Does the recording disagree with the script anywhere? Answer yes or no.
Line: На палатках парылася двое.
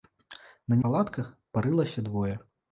no